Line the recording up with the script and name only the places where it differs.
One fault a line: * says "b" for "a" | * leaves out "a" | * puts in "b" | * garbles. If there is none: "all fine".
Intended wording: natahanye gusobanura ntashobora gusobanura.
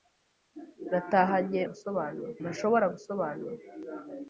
all fine